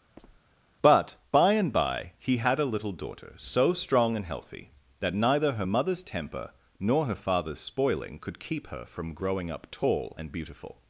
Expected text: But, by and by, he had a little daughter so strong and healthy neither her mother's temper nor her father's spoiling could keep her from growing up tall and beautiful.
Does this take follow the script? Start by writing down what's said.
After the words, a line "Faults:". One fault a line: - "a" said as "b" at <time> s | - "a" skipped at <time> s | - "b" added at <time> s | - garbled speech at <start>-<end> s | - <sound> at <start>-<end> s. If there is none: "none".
But, by and by, he had a little daughter so strong and healthy that neither her mother's temper nor her father's spoiling could keep her from growing up tall and beautiful.
Faults:
- squeak at 0.2-0.4 s
- "that" added at 5.0 s